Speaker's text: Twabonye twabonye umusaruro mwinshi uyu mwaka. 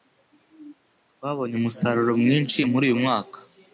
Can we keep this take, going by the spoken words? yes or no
no